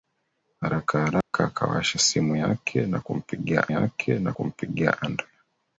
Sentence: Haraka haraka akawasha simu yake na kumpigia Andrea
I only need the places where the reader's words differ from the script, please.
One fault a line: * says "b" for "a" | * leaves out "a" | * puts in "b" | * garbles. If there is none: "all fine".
* puts in "yake na kumpigia"